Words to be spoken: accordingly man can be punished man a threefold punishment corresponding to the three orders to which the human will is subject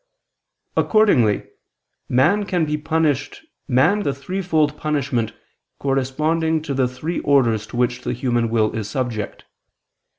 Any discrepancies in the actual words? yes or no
no